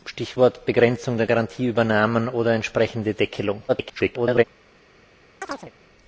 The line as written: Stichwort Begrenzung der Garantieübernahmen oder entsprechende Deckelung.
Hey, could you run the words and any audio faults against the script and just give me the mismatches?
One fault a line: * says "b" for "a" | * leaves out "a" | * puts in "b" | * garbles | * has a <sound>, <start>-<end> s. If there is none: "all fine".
* garbles
* has a chirp, 5.4-5.7 s